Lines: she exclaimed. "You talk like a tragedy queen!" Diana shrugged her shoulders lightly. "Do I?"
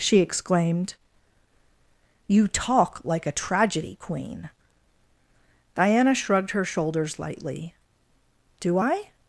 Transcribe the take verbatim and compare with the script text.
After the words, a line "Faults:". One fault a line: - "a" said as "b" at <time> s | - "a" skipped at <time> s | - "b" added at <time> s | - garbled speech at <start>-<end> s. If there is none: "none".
she exclaimed. "You talk like a tragedy queen!" Diana shrugged her shoulders lightly. "Do I?"
Faults:
none